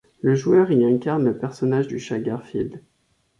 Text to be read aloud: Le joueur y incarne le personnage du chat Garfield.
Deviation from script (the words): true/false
false